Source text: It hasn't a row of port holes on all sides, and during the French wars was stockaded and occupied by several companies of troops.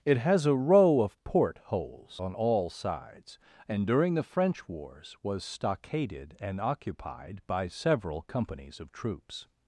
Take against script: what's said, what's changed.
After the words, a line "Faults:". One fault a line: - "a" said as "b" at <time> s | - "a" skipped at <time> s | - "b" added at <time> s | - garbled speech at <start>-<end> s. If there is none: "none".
It has a row of port holes on all sides, and during the French wars was stockaded and occupied by several companies of troops.
Faults:
- "hasn't" said as "has" at 0.2 s